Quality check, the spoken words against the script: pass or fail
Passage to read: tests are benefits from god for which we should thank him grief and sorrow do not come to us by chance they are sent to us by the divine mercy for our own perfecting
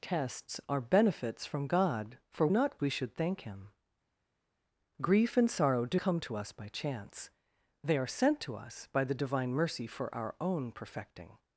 fail